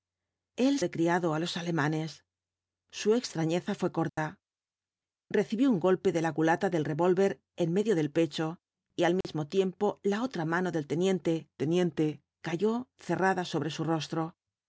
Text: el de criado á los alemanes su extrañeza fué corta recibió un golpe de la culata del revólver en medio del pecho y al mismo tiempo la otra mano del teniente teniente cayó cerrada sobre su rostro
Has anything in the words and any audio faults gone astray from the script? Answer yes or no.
yes